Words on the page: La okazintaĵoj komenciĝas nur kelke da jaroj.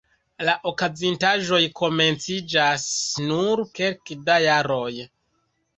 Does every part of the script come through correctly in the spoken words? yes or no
yes